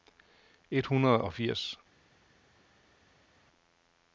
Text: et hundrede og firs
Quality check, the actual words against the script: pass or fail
pass